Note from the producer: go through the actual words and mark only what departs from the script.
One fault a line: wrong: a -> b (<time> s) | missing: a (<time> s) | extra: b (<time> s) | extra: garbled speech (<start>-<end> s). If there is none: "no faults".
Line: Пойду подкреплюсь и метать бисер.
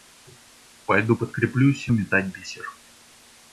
no faults